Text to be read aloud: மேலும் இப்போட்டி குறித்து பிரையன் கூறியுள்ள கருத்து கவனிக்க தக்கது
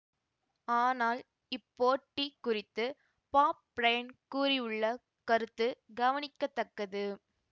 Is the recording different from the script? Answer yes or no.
yes